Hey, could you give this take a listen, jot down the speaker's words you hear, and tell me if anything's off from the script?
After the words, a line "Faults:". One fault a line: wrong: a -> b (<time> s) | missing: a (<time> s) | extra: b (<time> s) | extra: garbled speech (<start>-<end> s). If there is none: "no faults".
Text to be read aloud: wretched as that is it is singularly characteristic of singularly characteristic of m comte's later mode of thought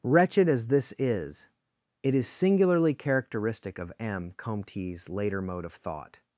wretched as this is it is singularly characteristic of m comte's later mode of thought
Faults:
wrong: that -> this (0.7 s)
missing: singularly characteristic of (3.9 s)